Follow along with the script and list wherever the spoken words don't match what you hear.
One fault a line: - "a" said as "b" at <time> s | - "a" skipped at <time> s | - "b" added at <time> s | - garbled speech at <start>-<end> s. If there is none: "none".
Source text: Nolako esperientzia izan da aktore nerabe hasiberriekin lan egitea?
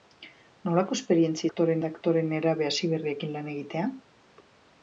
- "izan" said as "aktore" at 1.5 s